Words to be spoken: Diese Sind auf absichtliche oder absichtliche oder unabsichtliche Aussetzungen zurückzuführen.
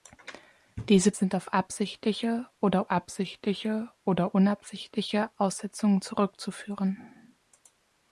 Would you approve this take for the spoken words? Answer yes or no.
yes